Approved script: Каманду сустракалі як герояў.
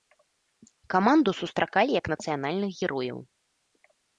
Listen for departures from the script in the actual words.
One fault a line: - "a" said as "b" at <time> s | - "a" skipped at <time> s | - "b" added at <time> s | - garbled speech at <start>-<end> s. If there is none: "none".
- "нацыянальных" added at 2.1 s